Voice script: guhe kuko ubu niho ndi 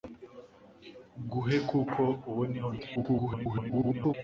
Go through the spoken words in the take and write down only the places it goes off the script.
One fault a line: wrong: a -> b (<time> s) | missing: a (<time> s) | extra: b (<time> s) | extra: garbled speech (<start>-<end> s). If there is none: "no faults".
extra: garbled speech (2.9-4.1 s)